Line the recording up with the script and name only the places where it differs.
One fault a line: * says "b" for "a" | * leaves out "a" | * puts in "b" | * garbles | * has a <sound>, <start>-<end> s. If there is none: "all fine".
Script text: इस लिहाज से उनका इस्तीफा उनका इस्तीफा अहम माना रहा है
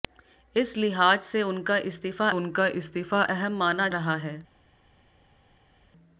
all fine